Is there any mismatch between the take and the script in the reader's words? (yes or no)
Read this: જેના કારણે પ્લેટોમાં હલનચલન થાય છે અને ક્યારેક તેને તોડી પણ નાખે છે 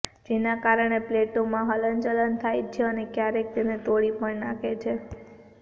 no